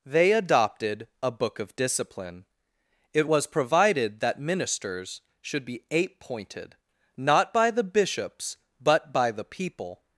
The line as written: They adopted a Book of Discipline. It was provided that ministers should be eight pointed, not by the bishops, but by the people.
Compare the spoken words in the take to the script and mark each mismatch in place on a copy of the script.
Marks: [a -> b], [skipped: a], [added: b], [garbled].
They adopted a Book of Discipline. It was provided that ministers should be eight pointed, not by the bishops, but by the people.